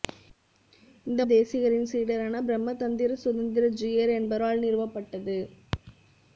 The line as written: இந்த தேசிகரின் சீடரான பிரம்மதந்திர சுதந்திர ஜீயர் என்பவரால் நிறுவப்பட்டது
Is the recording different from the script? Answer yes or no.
no